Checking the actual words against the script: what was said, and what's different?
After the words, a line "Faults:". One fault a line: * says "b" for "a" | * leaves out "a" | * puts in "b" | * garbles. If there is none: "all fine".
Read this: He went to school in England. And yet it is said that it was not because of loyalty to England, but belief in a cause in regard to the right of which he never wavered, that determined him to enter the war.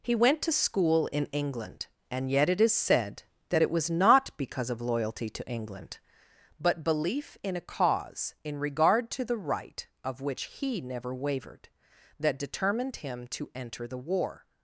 He went to school in England. And yet it is said that it was not because of loyalty to England, but belief in a cause in regard to the right of which he never wavered, that determined him to enter the war.
Faults:
all fine